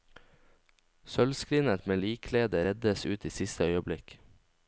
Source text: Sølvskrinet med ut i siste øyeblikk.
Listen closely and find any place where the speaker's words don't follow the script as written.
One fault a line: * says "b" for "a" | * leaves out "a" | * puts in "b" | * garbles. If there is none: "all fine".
* puts in "likkledet reddes"